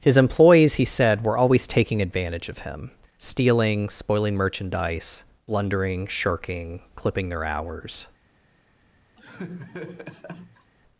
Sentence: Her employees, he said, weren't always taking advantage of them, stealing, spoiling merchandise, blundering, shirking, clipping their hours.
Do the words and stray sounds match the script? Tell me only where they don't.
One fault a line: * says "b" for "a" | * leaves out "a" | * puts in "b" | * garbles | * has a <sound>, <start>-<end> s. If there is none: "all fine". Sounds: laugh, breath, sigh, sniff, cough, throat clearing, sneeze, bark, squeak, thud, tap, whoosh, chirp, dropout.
* says "His" for "Her"
* says "were" for "weren't"
* says "him" for "them"
* has a laugh, 9.2-10.7 s